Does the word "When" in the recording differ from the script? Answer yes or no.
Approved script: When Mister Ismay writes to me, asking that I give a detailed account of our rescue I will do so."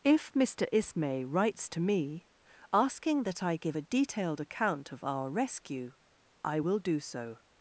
yes